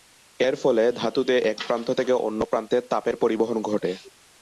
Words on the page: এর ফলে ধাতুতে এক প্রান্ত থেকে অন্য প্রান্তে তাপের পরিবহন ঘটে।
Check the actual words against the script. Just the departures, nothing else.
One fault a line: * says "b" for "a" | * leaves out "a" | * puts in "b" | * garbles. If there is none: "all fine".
all fine